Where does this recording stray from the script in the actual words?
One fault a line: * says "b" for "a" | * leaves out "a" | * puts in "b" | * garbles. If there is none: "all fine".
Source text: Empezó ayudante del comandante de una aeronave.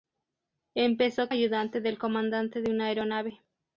all fine